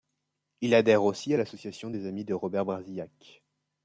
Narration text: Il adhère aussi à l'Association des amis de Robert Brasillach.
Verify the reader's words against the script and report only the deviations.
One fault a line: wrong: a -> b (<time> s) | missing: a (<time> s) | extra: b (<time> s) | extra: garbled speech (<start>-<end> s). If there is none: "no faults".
no faults